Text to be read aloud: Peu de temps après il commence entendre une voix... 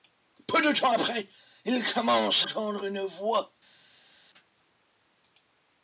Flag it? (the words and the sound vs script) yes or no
no